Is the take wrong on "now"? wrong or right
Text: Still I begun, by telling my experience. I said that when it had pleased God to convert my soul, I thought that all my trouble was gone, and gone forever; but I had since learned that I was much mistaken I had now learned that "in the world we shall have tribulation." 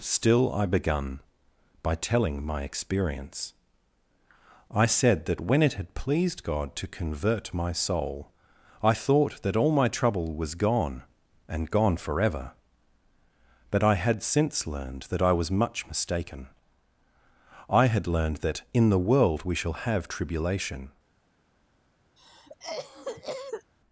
wrong